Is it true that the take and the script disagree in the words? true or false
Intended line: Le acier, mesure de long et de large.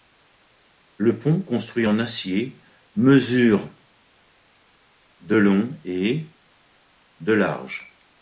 true